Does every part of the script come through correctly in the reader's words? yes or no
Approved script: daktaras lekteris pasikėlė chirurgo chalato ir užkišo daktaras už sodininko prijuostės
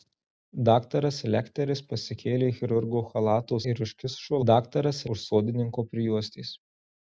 yes